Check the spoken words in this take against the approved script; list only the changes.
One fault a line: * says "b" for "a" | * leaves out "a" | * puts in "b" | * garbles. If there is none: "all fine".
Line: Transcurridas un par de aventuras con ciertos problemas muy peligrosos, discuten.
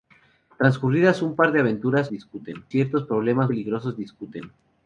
* says "discuten" for "con"
* leaves out "muy"